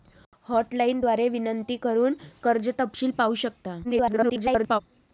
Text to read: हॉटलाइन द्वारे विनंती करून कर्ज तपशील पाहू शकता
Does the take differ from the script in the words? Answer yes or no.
yes